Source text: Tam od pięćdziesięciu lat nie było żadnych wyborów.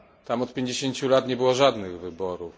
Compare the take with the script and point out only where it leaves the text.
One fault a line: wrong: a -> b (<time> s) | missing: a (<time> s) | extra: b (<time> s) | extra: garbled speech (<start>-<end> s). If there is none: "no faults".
no faults